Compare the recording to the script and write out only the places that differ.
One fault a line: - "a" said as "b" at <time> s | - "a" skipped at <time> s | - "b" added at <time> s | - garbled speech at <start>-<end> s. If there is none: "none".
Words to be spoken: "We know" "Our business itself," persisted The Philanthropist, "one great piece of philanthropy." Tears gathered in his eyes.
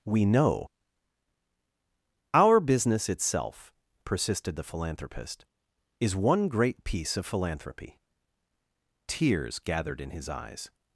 - "is" added at 6.0 s